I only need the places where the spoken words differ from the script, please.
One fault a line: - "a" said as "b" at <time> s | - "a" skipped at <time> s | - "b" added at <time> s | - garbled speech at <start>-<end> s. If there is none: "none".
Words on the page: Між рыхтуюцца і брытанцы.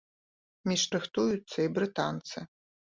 none